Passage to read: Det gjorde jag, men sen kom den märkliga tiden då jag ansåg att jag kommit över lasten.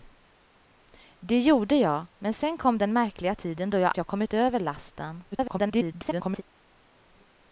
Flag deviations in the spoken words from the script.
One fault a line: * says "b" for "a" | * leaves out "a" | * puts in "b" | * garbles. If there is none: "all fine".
* leaves out "ansåg att"
* garbles